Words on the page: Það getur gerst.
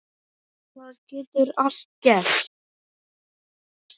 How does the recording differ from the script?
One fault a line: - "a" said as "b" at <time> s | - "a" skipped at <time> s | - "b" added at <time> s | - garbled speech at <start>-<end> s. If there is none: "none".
- "allt" added at 1.7 s